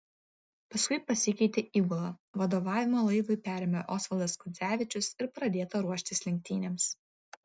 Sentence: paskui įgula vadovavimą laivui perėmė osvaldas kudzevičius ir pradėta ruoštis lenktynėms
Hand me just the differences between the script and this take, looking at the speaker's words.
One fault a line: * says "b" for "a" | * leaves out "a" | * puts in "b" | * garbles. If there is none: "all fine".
* puts in "pasikeitė"